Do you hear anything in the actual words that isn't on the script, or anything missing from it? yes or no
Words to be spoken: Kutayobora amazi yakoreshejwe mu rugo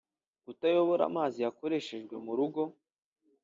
no